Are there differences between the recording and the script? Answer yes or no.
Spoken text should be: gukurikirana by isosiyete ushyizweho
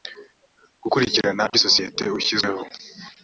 no